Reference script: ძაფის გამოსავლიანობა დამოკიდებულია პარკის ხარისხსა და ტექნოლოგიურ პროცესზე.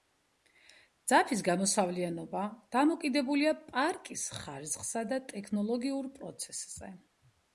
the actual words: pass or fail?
pass